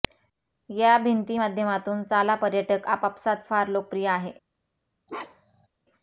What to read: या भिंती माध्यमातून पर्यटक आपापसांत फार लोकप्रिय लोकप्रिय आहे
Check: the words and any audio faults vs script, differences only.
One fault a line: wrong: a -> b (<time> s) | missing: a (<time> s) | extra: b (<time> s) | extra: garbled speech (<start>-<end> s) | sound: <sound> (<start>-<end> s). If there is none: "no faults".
extra: चाला (2.0 s)
missing: लोकप्रिय (4.1 s)
sound: bark (5.1-5.7 s)